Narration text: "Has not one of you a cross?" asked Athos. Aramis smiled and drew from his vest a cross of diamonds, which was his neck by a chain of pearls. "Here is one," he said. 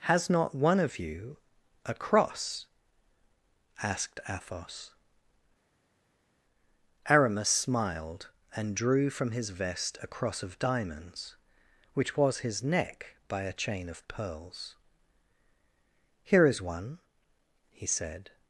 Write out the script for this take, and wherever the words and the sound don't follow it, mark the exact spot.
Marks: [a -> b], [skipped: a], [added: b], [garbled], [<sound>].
"Has not one of you a cross?" asked Athos. Aramis smiled and drew from his vest a cross of diamonds, which was his neck by a chain of pearls. "Here is one," he said.